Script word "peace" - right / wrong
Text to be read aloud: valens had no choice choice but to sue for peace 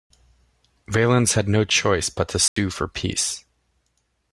right